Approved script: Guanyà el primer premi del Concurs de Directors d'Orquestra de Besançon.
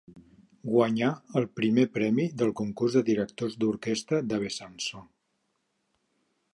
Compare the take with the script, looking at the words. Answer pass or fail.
pass